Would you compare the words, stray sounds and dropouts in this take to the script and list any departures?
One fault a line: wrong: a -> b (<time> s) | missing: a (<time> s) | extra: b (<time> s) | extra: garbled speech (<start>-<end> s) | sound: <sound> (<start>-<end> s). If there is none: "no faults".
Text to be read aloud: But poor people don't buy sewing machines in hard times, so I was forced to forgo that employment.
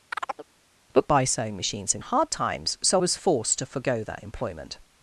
sound: chirp (0.1-0.5 s)
missing: poor people don't (1.1 s)
missing: I (3.0 s)